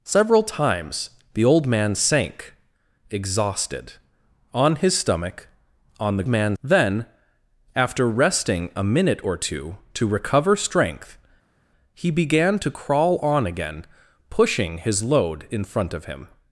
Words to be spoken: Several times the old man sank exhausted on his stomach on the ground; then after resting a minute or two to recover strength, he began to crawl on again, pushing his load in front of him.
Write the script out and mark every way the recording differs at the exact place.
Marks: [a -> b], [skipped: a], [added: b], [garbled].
Several times the old man sank exhausted on his stomach on the [ground; -> man] then after resting a minute or two to recover strength, he began to crawl on again, pushing his load in front of him.